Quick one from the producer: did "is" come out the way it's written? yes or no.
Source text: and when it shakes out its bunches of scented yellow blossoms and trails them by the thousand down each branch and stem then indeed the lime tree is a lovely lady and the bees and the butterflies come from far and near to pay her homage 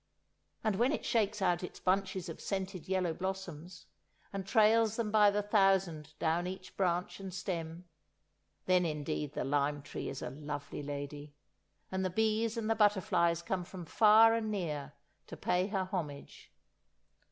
yes